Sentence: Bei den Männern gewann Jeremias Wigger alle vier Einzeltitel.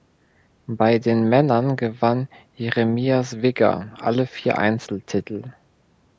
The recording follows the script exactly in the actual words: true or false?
true